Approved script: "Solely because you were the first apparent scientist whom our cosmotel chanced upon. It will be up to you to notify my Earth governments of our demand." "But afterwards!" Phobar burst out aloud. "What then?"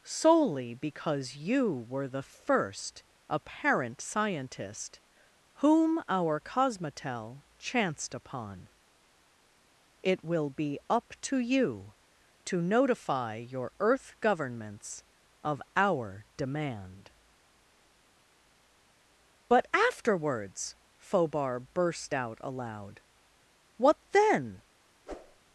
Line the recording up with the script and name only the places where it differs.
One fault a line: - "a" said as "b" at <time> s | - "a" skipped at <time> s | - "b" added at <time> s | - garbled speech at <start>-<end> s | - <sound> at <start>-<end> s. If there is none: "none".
- "my" said as "your" at 13.3 s
- whoosh at 25.1-25.4 s